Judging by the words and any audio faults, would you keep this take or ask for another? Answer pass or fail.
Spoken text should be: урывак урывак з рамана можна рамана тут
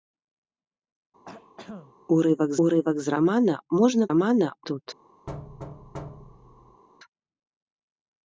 fail